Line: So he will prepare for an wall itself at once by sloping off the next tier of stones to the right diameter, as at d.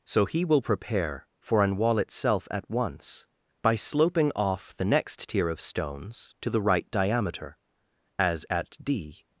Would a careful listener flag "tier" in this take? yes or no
no